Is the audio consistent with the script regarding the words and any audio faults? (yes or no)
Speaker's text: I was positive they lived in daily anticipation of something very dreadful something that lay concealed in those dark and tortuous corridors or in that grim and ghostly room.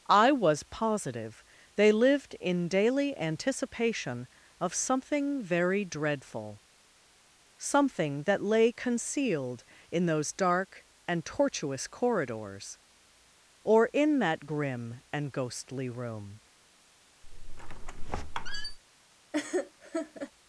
no